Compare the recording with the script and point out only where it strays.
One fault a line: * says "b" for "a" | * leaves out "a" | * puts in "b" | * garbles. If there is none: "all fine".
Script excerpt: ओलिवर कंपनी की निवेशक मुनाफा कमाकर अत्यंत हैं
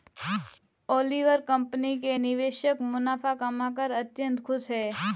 * says "के" for "की"
* puts in "खुश"